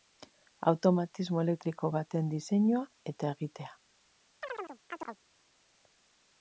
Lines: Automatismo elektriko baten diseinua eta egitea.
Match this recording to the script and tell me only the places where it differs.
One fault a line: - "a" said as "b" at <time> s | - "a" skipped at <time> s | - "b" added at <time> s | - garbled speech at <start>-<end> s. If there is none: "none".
none